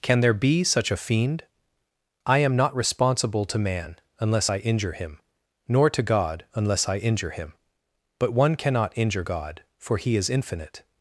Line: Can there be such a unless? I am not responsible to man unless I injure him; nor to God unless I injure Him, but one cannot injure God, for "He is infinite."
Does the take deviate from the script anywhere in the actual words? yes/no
yes